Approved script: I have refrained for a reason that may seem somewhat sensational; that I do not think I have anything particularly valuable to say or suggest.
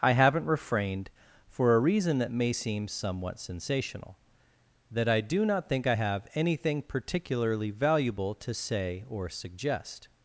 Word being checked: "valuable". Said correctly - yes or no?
yes